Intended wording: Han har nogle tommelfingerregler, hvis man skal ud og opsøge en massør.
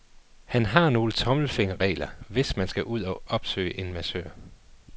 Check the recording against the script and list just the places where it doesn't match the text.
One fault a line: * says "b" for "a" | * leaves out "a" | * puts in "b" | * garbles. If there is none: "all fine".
all fine